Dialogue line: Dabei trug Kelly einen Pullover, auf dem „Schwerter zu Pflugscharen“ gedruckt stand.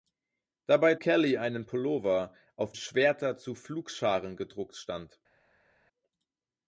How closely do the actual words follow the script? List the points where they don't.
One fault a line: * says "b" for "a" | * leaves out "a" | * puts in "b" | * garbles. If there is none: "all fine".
* leaves out "trug"
* leaves out "dem"